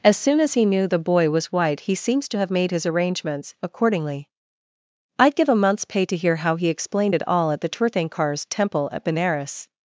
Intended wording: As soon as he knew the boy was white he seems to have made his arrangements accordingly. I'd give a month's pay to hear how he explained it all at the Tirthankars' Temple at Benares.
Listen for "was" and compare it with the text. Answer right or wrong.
right